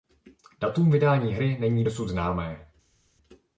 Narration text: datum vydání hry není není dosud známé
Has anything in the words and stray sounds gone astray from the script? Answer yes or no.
yes